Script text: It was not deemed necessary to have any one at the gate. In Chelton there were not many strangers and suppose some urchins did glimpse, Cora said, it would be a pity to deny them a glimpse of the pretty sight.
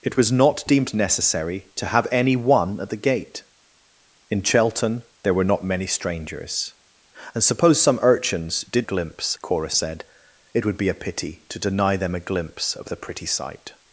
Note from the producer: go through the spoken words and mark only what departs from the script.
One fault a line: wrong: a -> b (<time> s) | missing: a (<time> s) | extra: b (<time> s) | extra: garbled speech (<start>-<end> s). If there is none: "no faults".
no faults